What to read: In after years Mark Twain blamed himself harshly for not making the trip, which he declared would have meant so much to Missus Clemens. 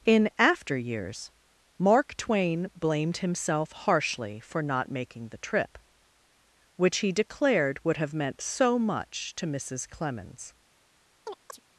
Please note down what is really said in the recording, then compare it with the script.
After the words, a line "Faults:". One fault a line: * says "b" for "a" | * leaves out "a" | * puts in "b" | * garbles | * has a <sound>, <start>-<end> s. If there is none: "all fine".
In after years Mark Twain blamed himself harshly for not making the trip, which he declared would have meant so much to Missus Clemens.
Faults:
* has a chirp, 11.3-11.6 s